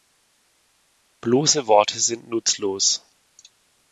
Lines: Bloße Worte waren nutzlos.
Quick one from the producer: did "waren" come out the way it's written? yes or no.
no